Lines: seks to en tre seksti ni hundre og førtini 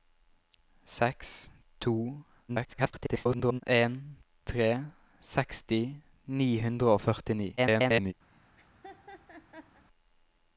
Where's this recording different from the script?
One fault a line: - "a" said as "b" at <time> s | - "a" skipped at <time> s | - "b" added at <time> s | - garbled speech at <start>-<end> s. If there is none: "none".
- garbled speech at 2.5-3.6 s
- garbled speech at 7.6-8.1 s